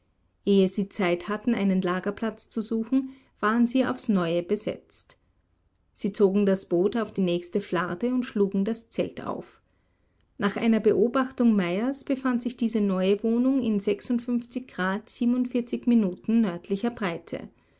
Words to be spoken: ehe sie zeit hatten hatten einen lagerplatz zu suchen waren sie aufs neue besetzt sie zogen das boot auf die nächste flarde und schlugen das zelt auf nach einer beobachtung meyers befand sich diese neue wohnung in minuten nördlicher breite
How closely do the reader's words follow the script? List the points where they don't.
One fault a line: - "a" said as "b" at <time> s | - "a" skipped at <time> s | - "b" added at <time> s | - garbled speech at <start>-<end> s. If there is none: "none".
- "hatten" skipped at 1.5 s